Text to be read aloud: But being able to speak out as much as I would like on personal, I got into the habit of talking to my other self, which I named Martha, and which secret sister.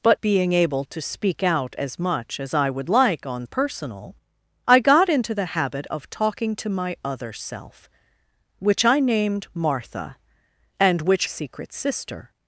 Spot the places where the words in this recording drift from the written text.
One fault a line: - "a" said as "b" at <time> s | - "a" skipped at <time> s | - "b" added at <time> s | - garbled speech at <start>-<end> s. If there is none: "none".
none